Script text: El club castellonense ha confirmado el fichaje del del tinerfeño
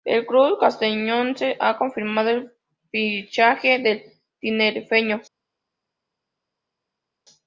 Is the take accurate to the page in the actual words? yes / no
no